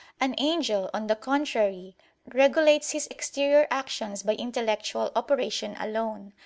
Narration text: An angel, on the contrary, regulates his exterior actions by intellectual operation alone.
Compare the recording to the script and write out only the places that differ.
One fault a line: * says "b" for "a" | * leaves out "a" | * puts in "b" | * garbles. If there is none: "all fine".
all fine